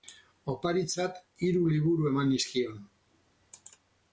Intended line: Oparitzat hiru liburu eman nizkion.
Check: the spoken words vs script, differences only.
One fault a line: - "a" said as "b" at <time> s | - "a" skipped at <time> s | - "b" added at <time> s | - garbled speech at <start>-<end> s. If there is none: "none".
none